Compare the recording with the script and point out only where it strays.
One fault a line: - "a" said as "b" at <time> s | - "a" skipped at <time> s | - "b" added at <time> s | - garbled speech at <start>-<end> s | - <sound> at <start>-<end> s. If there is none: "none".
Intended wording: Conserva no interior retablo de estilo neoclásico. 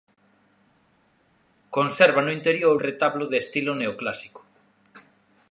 none